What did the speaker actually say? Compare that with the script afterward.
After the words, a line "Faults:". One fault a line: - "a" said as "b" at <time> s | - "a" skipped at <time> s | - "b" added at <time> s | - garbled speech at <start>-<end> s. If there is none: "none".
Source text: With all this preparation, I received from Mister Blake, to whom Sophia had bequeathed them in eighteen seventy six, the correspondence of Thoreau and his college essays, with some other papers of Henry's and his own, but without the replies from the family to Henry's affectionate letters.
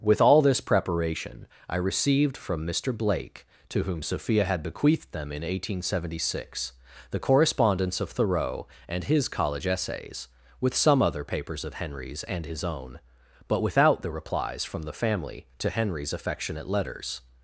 With all this preparation, I received from Mister Blake, to whom Sophia had bequeathed them in eighteen seventy six, the correspondence of Thoreau and his college essays, with some other papers of Henry's and his own, but without the replies from the family to Henry's affectionate letters.
Faults:
none